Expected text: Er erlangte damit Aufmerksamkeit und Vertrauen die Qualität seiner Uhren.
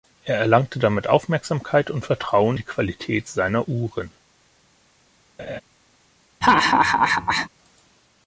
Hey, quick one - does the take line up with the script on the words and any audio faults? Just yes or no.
no